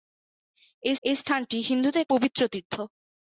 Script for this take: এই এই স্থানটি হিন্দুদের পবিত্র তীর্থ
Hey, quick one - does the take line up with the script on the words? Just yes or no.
yes